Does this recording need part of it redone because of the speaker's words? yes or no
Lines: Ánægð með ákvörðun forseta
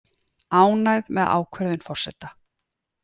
no